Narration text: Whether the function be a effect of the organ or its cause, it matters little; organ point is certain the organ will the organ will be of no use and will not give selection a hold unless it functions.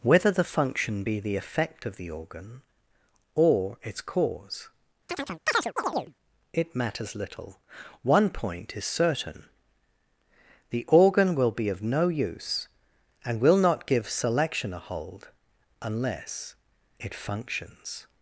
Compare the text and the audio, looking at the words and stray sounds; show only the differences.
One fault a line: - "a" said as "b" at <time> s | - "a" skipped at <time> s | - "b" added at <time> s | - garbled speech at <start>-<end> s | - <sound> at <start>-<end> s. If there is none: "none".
- "a" said as "the" at 1.2 s
- chirp at 5.1-6.1 s
- "organ" said as "one" at 8.0 s
- "the organ will" skipped at 11.5 s